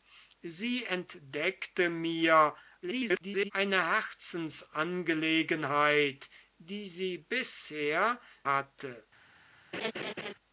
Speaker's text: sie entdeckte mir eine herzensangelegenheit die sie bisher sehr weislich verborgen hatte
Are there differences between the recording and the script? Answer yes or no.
yes